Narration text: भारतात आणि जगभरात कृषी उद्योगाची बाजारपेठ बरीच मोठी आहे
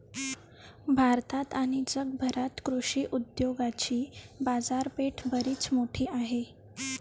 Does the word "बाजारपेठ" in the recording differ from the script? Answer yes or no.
no